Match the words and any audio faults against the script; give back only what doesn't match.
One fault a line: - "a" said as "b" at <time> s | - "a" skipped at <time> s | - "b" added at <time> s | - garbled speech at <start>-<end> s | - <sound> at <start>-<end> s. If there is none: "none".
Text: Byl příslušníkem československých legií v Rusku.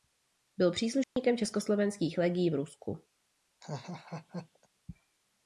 - dropout at 1.0-1.2 s
- laugh at 3.6-4.7 s